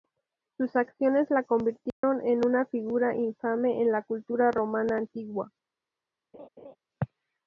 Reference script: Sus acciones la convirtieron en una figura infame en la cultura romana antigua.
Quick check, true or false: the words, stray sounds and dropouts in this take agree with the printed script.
false